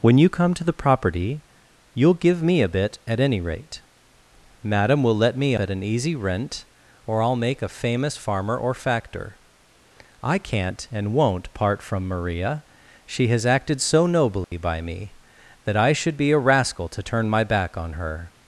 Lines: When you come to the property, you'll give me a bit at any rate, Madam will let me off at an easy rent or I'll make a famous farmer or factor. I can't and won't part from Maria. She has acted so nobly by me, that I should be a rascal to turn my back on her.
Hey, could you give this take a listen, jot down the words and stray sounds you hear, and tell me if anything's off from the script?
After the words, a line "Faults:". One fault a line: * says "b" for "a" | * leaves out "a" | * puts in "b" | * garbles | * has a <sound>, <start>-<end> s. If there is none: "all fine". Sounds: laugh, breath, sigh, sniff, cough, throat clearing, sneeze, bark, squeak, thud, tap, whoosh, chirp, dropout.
When you come to the property, you'll give me a bit at any rate, Madam will let me at an easy rent or I'll make a famous farmer or factor. I can't and won't part from Maria. She has acted so nobly by me, that I should be a rascal to turn my back on her.
Faults:
* leaves out "off"
* has a dropout, 14.4-14.5 s